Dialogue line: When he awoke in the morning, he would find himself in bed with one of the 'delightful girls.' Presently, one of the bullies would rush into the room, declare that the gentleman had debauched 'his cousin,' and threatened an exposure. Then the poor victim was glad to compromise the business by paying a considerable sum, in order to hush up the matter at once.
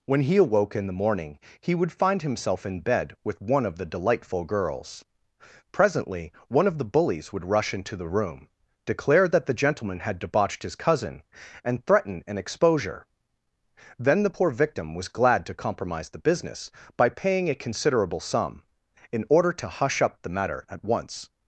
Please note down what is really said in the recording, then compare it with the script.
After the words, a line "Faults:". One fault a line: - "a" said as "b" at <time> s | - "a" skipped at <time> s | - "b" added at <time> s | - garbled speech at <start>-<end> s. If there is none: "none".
When he awoke in the morning, he would find himself in bed with one of the 'delightful girls.' Presently, one of the bullies would rush into the room, declare that the gentleman had debauched 'his cousin,' and threaten an exposure. Then the poor victim was glad to compromise the business by paying a considerable sum, in order to hush up the matter at once.
Faults:
- "threatened" said as "threaten" at 11.8 s